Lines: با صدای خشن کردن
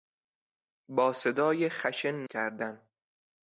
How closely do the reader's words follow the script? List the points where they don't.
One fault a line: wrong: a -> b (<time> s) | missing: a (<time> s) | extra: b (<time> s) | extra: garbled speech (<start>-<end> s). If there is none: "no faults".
no faults